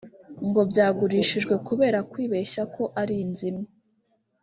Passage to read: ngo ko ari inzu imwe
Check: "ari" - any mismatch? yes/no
no